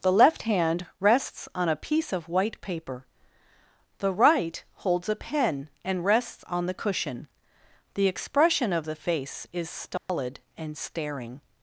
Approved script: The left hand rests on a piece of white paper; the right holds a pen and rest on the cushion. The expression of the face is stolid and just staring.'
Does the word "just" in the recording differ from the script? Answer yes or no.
yes